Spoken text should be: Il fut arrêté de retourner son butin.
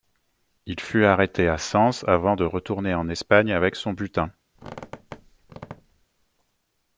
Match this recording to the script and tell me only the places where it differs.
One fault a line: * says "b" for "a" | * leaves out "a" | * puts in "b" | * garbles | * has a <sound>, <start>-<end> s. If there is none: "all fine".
* puts in "à Sens avant"
* puts in "en Espagne avec"
* has a squeak, 4.5-6.1 s